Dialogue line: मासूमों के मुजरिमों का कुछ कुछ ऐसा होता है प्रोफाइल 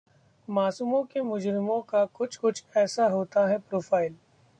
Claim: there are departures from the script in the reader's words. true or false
false